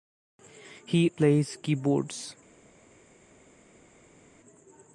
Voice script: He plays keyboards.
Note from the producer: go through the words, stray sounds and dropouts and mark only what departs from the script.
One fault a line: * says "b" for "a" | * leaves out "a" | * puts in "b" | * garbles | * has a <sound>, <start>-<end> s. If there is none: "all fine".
all fine